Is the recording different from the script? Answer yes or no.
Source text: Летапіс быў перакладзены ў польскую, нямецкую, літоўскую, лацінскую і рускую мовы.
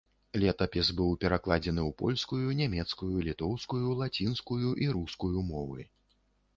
no